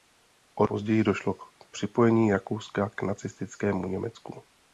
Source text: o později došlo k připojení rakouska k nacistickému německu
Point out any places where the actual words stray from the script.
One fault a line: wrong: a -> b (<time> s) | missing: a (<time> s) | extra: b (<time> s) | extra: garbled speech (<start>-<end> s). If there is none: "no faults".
no faults